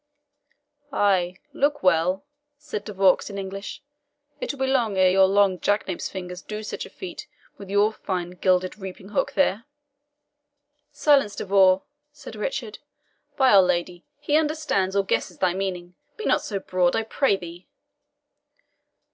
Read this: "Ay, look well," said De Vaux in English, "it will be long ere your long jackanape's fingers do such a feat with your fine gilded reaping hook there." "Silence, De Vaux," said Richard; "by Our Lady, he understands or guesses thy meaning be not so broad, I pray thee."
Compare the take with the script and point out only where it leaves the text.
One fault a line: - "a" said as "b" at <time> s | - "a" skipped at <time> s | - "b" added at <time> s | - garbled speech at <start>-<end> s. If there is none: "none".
none